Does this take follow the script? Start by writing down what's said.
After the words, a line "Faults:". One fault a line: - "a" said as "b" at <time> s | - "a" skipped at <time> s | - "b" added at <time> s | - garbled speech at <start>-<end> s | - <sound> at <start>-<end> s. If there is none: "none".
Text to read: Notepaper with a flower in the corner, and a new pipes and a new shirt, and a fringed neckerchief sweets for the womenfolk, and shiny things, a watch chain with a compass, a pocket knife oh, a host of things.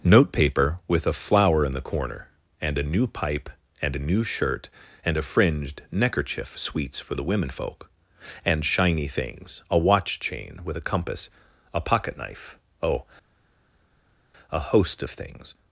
Notepaper with a flower in the corner, and a new pipe and a new shirt, and a fringed neckerchief sweets for the womenfolk, and shiny things, a watch chain with a compass, a pocket knife oh, a host of things.
Faults:
- "pipes" said as "pipe" at 3.0 s